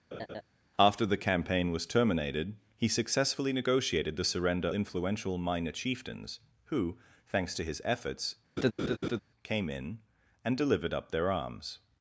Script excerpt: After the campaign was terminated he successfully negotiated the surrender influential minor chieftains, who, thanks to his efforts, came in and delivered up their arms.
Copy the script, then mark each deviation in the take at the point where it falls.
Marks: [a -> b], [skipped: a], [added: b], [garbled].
After the campaign was terminated he successfully negotiated the surrender influential minor chieftains, who, thanks to his efforts, came in and delivered up their arms.